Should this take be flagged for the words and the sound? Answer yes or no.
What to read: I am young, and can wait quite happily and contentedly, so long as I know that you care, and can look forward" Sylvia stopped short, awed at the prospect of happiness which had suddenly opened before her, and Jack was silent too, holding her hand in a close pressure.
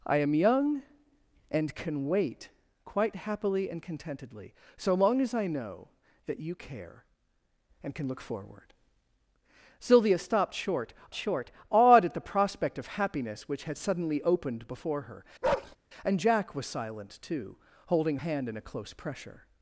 yes